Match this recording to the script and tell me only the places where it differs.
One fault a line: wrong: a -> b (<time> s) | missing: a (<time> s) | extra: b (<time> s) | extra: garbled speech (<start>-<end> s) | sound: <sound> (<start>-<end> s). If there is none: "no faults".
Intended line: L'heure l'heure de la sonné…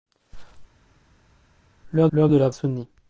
no faults